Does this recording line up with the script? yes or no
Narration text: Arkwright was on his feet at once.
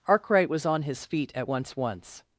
no